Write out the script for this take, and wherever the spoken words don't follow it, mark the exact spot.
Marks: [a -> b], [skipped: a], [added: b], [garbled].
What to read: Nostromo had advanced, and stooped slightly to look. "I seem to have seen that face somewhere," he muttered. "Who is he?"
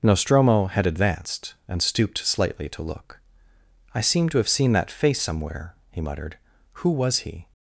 Nostromo had advanced, and stooped slightly to look. "I seem to have seen that face somewhere," he muttered. "Who [is -> was] he?"